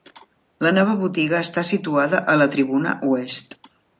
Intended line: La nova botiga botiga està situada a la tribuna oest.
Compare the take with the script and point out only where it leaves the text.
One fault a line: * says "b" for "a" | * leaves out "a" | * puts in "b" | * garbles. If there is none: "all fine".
* leaves out "botiga"